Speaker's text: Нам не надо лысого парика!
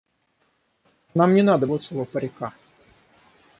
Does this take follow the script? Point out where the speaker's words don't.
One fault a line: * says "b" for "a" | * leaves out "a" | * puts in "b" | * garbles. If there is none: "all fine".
all fine